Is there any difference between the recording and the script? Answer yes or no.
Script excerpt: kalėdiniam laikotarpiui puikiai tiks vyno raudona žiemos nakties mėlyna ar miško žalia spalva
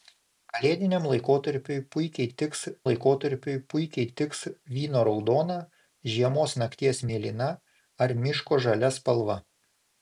yes